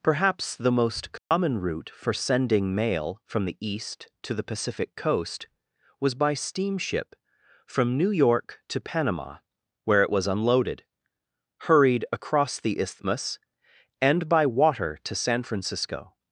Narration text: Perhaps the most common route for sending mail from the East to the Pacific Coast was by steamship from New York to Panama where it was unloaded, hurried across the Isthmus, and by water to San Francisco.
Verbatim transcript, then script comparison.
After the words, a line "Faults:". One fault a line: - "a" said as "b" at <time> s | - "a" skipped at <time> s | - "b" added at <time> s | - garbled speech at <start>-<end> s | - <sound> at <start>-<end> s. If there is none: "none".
Perhaps the most common route for sending mail from the East to the Pacific Coast was by steamship from New York to Panama where it was unloaded, hurried across the Isthmus, and by water to San Francisco.
Faults:
- dropout at 1.2-1.3 s